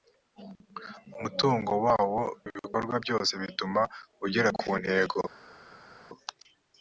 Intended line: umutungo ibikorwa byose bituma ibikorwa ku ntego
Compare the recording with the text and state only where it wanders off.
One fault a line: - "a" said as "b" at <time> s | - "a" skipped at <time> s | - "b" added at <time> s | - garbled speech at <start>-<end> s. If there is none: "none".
- "wawo" added at 1.9 s
- "ibikorwa" said as "ugera" at 4.2 s